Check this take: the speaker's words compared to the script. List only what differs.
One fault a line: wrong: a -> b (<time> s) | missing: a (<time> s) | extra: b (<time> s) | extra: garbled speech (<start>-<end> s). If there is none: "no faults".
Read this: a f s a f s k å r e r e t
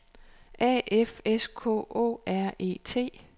missing: a f s (1.4 s)
missing: r e (2.8 s)